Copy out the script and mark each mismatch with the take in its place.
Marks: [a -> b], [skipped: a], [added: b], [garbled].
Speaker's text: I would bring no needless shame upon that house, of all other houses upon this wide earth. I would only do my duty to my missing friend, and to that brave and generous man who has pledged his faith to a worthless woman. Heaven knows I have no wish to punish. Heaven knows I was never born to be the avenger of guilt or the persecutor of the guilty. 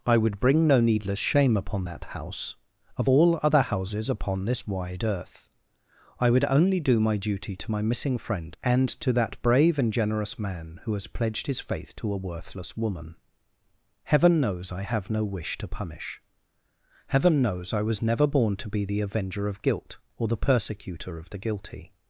I would bring no needless shame upon that house, of all other houses upon this wide earth. I would only do my duty to my missing friend, and to that brave and generous man who has pledged his faith to a worthless woman. Heaven knows I have no wish to punish. Heaven knows I was never born to be the avenger of guilt or the persecutor of the guilty.